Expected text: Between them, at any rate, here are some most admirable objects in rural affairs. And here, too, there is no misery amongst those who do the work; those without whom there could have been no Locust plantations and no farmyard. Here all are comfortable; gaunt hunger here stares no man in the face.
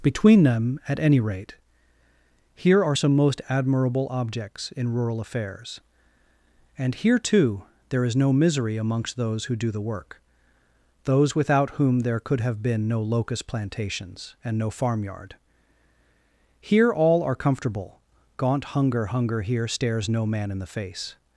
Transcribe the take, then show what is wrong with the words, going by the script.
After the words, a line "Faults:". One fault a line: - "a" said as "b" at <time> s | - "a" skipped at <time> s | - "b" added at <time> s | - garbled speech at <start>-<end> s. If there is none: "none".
Between them, at any rate, here are some most admirable objects in rural affairs. And here, too, there is no misery amongst those who do the work; those without whom there could have been no Locust plantations and no farmyard. Here all are comfortable; gaunt hunger hunger here stares no man in the face.
Faults:
- "hunger" added at 19.1 s